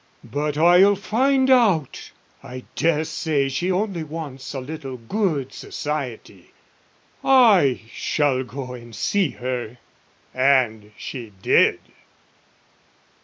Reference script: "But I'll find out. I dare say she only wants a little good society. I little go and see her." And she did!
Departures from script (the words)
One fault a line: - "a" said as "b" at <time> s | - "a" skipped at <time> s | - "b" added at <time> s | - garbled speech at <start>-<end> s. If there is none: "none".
- "little" said as "shall" at 7.9 s